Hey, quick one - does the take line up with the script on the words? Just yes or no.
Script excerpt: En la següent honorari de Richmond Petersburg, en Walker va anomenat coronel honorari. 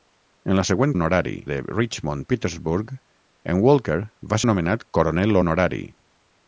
yes